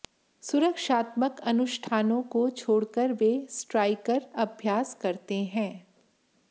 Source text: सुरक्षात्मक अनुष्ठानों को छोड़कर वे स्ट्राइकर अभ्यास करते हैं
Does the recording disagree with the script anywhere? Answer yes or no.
no